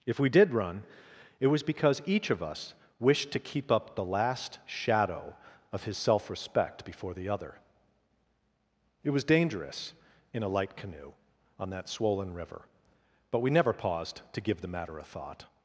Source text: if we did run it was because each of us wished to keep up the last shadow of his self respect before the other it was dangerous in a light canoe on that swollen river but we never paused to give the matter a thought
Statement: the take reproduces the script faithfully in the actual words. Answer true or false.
true